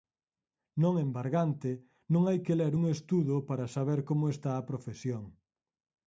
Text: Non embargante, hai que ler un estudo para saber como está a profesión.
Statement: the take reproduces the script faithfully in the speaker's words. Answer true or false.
false